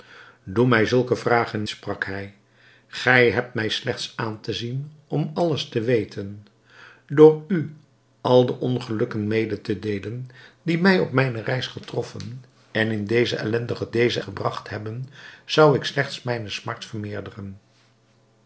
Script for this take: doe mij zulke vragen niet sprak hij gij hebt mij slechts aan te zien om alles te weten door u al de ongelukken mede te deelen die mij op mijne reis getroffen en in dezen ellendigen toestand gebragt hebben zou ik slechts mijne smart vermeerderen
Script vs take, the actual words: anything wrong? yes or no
yes